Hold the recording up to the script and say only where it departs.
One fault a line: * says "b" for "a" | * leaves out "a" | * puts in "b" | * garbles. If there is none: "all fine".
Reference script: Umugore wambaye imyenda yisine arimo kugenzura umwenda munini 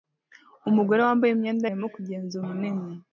* leaves out "yisine"
* leaves out "umwenda"